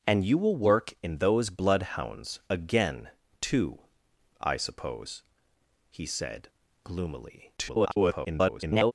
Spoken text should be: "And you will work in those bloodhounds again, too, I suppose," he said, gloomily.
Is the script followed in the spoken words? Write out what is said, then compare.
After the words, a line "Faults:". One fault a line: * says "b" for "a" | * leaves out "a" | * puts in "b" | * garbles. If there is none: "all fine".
"And you will work in those bloodhounds again, too, I suppose," he said, gloomily. [garbled]
Faults:
* garbles